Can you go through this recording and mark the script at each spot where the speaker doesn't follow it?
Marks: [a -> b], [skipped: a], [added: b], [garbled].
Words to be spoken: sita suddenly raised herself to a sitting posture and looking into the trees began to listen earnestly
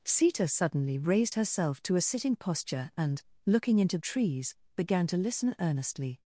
sita suddenly raised herself to a sitting posture and looking into [skipped: the] trees began to listen earnestly